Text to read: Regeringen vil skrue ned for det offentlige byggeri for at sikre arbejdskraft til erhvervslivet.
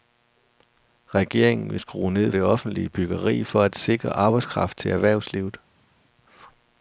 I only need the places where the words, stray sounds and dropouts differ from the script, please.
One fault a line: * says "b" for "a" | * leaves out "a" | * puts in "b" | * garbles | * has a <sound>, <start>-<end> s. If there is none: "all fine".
* leaves out "for"